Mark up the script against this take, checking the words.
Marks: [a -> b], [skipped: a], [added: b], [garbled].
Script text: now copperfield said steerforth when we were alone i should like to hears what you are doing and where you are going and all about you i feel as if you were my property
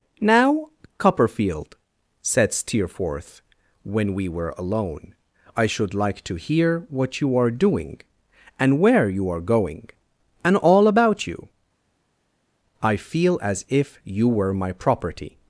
now copperfield said steerforth when we were alone i should like to [hears -> hear] what you are doing and where you are going and all about you i feel as if you were my property